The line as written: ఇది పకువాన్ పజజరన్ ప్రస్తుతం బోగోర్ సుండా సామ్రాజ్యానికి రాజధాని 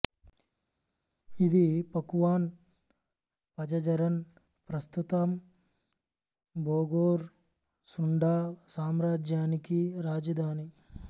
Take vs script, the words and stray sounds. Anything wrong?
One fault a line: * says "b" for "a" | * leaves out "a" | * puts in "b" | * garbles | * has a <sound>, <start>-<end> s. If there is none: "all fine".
all fine